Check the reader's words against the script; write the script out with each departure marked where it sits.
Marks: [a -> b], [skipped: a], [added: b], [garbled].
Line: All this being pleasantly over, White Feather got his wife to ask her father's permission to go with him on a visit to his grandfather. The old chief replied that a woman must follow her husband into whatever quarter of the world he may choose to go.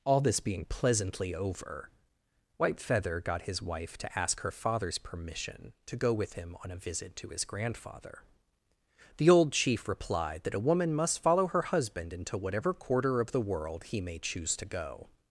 All this being pleasantly over, White Feather got his wife to ask her father's permission to go with him on a visit to his grandfather. The old chief replied that a woman must follow her husband into whatever quarter of the world he may choose to go.